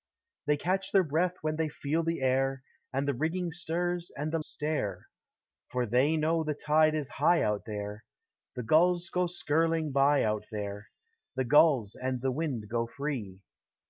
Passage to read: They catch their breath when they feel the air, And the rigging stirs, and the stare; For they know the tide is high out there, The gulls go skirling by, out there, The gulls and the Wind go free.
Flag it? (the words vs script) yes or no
no